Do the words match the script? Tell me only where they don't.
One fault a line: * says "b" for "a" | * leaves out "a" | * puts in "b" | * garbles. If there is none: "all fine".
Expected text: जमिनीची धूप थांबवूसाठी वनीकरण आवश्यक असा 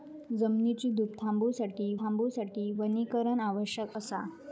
* puts in "थांबवूसाठी"